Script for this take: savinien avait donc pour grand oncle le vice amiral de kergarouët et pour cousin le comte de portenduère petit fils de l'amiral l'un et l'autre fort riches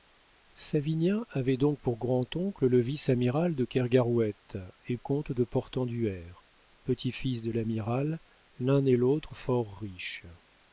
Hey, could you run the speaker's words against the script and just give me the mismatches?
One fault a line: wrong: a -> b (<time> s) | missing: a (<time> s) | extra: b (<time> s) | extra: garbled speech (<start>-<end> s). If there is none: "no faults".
missing: pour cousin le (5.0 s)